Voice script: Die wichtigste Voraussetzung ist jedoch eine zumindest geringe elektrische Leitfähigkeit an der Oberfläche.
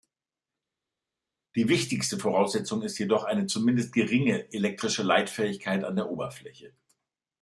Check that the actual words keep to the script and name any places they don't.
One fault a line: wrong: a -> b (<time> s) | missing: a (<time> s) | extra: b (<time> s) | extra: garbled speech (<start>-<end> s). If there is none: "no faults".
no faults